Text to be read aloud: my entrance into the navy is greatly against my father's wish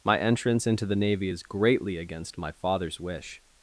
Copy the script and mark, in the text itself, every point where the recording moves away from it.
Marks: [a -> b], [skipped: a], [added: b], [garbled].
my entrance into the navy is greatly against my father's wish